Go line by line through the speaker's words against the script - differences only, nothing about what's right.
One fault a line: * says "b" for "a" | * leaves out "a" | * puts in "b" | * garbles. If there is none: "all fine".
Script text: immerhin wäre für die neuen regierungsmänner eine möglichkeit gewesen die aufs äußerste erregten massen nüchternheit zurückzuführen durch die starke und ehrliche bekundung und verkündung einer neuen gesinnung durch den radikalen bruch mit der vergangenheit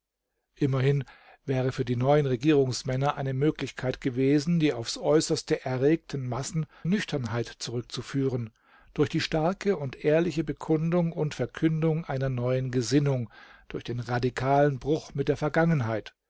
all fine